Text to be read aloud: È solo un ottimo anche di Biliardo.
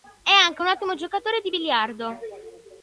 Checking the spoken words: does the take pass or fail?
fail